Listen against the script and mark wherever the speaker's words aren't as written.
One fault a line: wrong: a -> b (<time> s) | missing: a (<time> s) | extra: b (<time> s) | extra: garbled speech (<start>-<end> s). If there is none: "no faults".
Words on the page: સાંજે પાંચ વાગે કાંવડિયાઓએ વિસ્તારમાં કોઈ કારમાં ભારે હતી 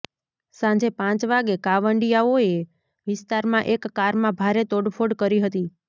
wrong: કોઈ -> એક (3.8 s)
extra: તોડફોડ કરી (4.7 s)